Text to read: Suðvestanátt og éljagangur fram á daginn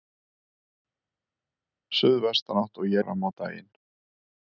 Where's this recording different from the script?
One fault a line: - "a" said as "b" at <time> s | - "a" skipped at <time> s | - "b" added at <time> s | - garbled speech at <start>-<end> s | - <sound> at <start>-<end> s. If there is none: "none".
- "éljagangur" skipped at 3.0 s